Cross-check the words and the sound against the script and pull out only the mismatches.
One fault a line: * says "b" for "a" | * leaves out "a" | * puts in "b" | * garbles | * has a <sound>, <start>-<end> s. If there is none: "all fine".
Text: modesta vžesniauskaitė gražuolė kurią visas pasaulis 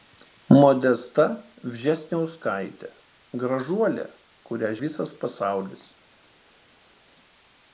all fine